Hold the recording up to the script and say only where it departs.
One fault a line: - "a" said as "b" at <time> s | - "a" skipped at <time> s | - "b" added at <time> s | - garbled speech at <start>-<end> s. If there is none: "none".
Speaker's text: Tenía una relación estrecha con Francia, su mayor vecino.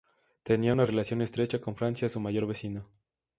none